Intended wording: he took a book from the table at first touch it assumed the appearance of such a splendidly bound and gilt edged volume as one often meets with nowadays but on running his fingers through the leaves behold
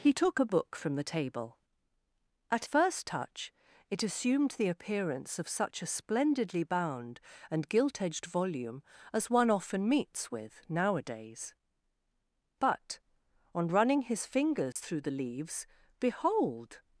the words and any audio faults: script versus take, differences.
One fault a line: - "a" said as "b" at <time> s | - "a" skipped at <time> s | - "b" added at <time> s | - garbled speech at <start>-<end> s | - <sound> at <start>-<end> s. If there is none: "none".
- dropout at 14.7-14.8 s